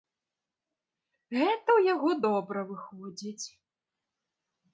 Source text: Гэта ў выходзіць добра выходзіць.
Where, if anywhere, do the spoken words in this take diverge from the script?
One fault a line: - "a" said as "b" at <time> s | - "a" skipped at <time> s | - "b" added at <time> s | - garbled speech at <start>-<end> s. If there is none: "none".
- "выходзіць" said as "яго" at 1.9 s